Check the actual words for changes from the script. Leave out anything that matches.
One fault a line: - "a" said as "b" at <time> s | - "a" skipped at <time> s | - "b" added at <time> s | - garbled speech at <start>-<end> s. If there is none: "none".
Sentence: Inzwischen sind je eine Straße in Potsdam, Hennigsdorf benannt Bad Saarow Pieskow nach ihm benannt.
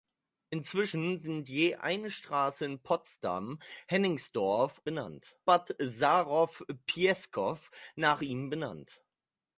none